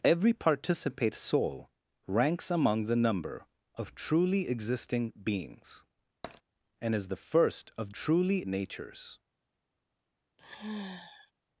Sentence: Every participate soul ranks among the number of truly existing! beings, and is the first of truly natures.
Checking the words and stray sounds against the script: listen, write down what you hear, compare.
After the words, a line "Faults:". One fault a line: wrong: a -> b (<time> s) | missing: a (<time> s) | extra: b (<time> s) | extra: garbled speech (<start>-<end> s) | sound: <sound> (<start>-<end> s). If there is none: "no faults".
Every participate soul ranks among the number of truly existing! beings, and is the first of truly natures.
Faults:
sound: tap (6.2-6.4 s)
sound: sigh (10.4-11.3 s)